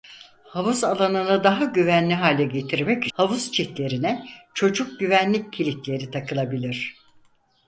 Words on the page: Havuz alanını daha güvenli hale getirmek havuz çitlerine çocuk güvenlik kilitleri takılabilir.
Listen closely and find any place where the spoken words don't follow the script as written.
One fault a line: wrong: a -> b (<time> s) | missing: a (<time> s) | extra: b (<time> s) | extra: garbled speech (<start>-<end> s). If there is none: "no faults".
no faults